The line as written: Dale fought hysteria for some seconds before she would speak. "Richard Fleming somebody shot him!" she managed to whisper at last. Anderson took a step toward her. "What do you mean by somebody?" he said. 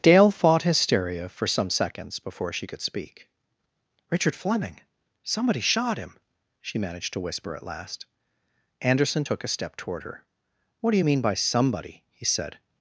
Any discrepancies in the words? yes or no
yes